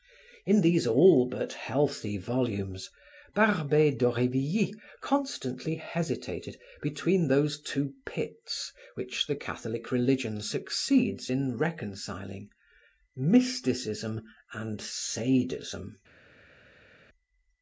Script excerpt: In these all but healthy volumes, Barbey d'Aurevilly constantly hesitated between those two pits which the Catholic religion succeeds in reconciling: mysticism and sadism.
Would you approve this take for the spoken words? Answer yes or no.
yes